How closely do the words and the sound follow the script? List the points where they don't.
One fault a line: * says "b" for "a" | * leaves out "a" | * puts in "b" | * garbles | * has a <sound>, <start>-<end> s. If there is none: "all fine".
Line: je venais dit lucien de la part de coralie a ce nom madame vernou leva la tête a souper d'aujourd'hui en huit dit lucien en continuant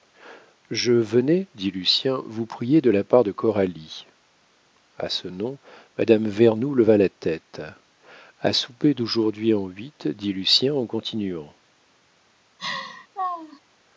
* puts in "vous prier"
* has a laugh, 12.6-13.6 s